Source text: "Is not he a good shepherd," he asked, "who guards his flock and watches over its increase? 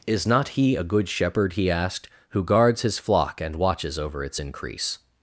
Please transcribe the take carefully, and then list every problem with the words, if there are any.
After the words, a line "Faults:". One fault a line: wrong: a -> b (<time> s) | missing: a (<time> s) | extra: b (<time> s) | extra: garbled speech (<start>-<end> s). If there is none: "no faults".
"Is not he a good shepherd," he asked, "who guards his flock and watches over its increase?
Faults:
no faults